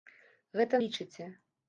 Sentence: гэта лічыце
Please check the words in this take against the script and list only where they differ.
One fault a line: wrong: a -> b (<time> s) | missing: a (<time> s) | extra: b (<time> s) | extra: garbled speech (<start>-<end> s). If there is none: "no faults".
no faults